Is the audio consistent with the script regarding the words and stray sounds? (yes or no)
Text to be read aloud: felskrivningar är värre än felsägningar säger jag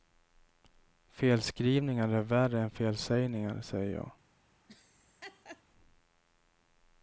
no